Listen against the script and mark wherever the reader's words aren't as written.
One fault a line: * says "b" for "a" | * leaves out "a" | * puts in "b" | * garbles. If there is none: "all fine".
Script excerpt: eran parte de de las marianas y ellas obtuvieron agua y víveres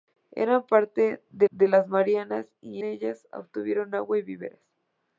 all fine